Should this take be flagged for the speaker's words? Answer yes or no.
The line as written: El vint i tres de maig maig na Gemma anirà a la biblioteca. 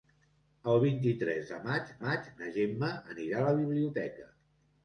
no